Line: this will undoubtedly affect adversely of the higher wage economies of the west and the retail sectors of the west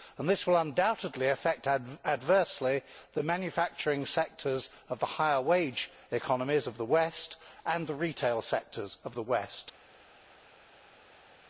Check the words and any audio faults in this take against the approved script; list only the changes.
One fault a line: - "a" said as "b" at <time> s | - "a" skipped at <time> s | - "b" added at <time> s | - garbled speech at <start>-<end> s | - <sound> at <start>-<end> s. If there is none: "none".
- "the manufacturing sectors" added at 3.1 s